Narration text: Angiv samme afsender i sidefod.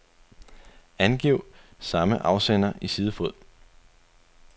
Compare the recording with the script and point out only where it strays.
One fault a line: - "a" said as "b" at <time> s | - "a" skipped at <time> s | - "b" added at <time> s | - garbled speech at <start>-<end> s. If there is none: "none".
none